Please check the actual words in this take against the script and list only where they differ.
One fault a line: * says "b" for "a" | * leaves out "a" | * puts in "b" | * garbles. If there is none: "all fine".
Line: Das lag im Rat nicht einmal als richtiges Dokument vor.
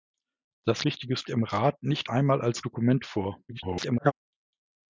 * says "richtiges" for "lag"
* leaves out "richtiges"
* garbles